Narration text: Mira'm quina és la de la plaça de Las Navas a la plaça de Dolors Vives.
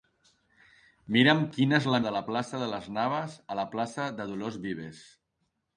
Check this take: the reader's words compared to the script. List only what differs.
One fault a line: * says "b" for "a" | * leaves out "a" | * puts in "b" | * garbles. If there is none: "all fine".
all fine